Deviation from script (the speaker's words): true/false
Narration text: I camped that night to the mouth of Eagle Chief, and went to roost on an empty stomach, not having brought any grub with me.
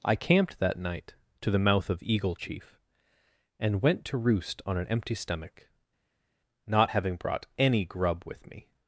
false